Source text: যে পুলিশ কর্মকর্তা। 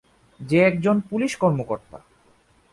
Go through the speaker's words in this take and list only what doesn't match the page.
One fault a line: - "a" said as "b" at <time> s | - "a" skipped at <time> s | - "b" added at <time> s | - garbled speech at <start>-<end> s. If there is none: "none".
- "একজন" added at 0.6 s